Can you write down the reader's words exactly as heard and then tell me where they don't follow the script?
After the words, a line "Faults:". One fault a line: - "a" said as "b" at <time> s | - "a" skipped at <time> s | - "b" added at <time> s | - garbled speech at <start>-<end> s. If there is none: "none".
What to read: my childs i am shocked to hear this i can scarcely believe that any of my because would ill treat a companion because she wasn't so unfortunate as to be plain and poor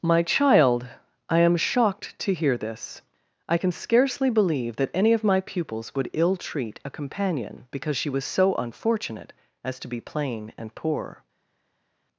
my child i am shocked to hear this i can scarcely believe that any of my pupils would ill treat a companion because she was so unfortunate as to be plain and poor
Faults:
- "childs" said as "child" at 0.2 s
- "because" said as "pupils" at 5.4 s
- "wasn't" said as "was" at 8.1 s